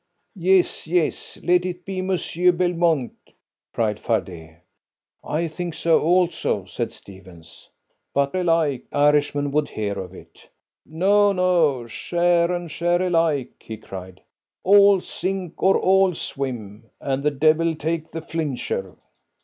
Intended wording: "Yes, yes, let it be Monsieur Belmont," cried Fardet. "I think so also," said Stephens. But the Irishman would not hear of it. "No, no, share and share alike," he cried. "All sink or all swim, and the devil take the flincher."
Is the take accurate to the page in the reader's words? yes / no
no